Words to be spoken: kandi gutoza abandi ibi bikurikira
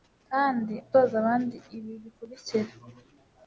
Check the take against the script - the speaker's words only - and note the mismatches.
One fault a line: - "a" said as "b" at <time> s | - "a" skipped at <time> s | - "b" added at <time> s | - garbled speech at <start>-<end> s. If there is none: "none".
none